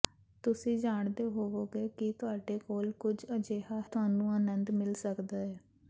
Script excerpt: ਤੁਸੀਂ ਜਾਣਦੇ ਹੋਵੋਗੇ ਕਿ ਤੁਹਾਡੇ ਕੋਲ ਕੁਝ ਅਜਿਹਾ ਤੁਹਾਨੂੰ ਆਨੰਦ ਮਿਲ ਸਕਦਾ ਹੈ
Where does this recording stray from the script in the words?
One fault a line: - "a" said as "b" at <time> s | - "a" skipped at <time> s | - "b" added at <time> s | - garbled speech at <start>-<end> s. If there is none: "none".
none